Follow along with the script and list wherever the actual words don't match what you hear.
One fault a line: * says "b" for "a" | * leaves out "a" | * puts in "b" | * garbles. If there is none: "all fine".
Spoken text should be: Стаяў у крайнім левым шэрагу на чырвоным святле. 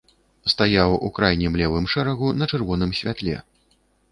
all fine